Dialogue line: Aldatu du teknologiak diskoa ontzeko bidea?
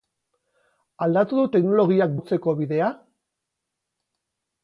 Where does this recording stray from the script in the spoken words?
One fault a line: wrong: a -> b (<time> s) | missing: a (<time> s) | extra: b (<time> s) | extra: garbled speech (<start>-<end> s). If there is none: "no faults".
missing: diskoa (2.2 s)